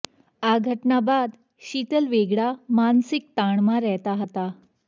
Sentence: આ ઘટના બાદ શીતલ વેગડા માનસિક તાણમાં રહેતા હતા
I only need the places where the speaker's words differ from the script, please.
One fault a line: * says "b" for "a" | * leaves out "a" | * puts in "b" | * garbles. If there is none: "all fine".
all fine